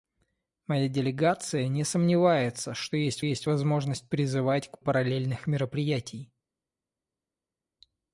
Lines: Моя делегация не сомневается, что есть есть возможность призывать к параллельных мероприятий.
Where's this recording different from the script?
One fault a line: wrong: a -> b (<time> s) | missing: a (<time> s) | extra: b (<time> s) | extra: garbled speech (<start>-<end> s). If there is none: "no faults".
no faults